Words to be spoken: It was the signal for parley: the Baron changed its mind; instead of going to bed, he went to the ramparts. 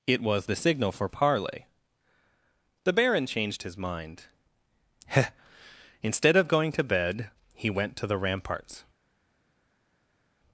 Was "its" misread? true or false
true